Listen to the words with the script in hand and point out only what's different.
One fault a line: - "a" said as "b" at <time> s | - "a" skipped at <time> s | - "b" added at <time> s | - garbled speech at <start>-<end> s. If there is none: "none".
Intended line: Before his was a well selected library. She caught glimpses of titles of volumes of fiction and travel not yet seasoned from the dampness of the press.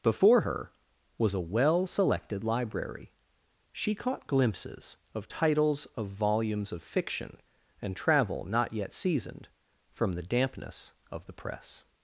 - "his" said as "her" at 0.4 s